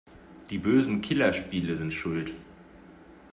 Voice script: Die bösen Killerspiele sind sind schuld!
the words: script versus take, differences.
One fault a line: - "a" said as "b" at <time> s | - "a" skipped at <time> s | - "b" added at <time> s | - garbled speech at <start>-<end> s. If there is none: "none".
- "sind" skipped at 1.9 s